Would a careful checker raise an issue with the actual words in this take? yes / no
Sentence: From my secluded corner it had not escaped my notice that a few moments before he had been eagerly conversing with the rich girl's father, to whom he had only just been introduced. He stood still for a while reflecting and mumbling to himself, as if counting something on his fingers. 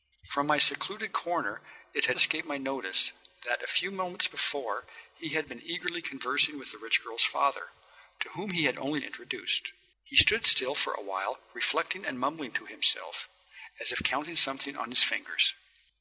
yes